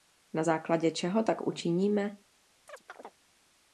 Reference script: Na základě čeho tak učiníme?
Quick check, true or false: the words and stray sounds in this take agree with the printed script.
false